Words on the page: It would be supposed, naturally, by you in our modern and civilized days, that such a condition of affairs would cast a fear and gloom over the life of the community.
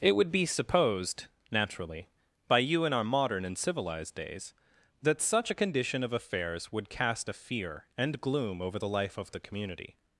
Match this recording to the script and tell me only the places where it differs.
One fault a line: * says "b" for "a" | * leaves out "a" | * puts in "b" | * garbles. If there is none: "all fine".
all fine